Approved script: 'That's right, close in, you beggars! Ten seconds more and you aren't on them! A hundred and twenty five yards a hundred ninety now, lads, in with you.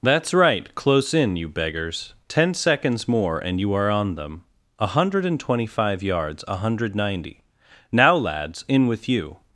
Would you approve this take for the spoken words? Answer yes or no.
no